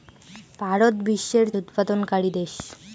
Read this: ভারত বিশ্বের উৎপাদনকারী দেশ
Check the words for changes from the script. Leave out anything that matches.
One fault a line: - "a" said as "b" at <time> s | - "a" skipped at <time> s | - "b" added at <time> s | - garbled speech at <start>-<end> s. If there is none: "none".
none